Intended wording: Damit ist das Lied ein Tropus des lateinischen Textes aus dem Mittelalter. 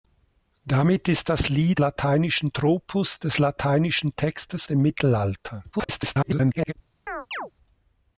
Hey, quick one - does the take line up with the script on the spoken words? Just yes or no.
no